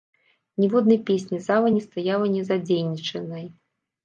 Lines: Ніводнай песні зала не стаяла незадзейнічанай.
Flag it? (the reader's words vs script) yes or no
no